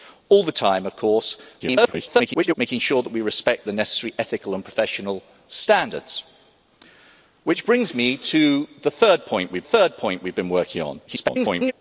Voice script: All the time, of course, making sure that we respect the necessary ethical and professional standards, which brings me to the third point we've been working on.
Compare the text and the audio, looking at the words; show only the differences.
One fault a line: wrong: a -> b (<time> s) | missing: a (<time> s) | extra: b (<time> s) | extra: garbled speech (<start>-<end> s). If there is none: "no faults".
extra: garbled speech (1.6-2.5 s)
extra: third point we've (9.6 s)
extra: garbled speech (11.1-11.7 s)